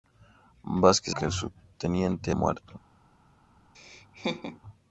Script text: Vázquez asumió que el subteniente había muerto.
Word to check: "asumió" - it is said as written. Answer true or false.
false